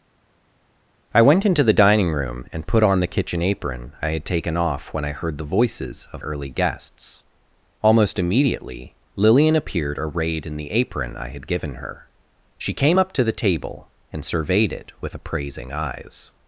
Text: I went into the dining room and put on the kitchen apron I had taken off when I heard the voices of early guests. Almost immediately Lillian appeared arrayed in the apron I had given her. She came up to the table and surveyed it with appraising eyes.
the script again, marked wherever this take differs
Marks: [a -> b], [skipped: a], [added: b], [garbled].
I went into the dining room and put on the kitchen apron I had taken off when I heard the voices of early guests. Almost immediately Lillian appeared arrayed in the apron I had given her. She came up to the table and surveyed it with appraising eyes.